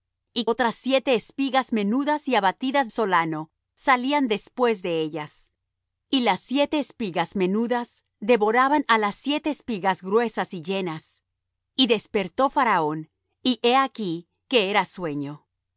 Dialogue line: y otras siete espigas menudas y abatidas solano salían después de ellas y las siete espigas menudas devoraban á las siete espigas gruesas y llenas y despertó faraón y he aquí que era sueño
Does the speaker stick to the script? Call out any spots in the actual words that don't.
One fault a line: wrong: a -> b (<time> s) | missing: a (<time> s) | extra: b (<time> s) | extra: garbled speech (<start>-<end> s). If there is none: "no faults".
no faults